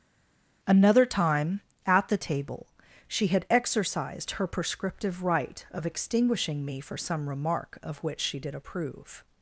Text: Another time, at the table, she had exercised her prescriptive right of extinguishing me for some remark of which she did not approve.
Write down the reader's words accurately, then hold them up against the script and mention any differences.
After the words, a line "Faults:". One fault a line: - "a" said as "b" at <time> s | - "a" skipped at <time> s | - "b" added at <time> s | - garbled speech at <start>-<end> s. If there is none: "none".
Another time, at the table, she had exercised her prescriptive right of extinguishing me for some remark of which she did approve.
Faults:
- "not" skipped at 8.5 s